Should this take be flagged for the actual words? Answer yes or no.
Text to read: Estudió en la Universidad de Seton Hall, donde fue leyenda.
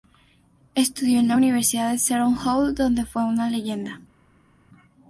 yes